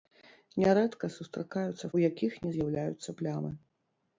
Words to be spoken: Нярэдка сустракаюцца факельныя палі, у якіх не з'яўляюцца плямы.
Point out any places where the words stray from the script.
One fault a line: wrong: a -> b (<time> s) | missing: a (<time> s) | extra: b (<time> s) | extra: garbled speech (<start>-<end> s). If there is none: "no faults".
missing: факельныя палі (1.9 s)